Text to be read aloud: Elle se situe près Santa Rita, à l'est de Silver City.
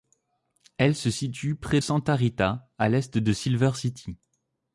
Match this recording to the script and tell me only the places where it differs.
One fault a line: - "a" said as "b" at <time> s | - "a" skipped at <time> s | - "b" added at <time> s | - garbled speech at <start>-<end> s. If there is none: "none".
none